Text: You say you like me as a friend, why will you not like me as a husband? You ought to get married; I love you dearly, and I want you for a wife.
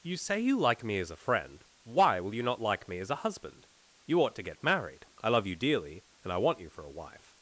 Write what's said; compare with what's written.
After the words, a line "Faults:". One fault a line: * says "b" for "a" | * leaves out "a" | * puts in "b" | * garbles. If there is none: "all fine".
You say you like me as a friend, why will you not like me as a husband? You ought to get married; I love you dearly, and I want you for a wife.
Faults:
all fine